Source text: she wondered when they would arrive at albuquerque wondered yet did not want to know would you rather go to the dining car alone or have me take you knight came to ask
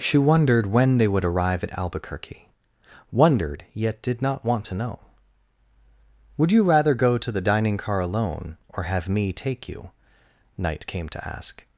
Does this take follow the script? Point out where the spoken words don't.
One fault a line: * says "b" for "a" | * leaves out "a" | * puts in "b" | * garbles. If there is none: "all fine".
all fine